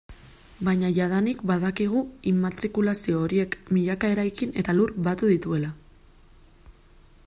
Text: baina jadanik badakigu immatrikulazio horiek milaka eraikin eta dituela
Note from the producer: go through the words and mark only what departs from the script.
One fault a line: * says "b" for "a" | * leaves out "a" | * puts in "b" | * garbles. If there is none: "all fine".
* puts in "lur batu"